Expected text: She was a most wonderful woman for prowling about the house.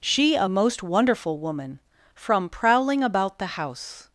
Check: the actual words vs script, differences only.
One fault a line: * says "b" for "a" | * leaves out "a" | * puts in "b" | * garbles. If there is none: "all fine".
* leaves out "was"
* says "from" for "for"